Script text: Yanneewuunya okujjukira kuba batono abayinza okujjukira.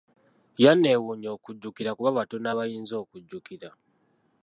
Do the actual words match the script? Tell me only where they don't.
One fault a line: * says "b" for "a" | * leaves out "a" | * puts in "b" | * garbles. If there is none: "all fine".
all fine